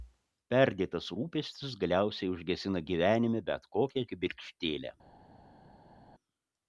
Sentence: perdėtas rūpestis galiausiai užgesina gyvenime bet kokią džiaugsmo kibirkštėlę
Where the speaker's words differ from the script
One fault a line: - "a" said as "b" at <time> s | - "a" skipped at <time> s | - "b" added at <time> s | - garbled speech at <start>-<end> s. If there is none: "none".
- "džiaugsmo" skipped at 4.0 s